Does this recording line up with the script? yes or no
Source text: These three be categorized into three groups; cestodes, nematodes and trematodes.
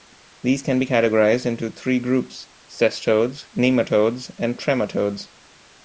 no